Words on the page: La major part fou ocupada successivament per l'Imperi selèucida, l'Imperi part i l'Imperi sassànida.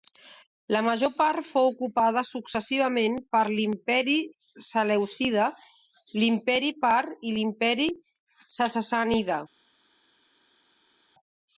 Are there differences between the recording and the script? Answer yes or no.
no